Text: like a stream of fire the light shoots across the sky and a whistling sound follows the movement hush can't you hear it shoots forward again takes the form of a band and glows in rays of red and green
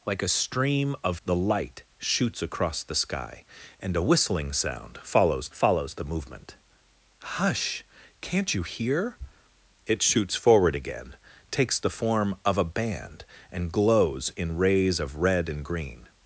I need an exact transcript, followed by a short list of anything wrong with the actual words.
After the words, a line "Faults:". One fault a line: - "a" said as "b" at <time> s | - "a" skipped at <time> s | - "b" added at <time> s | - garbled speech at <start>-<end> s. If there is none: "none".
like a stream of the light shoots across the sky and a whistling sound follows follows the movement hush can't you hear it shoots forward again takes the form of a band and glows in rays of red and green
Faults:
- "fire" skipped at 1.2 s
- "follows" added at 5.5 s